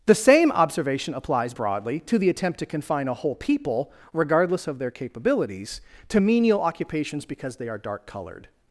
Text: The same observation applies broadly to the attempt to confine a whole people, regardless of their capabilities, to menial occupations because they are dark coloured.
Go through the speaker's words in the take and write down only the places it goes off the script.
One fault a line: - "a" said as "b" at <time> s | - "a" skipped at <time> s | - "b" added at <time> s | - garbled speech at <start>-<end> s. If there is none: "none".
none